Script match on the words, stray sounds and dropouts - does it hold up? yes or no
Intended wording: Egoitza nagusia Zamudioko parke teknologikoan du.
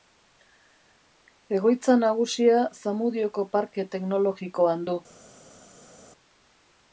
yes